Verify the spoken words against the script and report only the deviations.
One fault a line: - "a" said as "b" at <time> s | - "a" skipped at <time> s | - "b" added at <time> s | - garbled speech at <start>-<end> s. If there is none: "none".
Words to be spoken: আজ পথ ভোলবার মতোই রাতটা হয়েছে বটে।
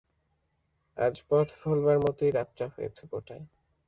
none